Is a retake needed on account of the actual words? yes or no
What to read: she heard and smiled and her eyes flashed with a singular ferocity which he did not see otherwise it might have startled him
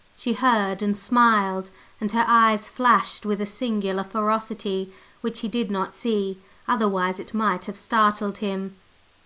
no